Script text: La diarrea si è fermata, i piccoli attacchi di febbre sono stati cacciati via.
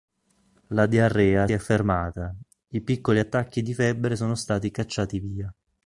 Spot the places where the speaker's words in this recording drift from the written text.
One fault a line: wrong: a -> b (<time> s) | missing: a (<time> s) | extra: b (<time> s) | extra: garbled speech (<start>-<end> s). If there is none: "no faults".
missing: si (1.5 s)